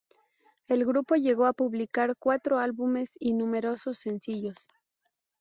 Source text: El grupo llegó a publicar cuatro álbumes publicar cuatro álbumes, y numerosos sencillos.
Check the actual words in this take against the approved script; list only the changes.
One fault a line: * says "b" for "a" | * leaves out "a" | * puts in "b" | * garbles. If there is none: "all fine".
* leaves out "publicar cuatro álbumes"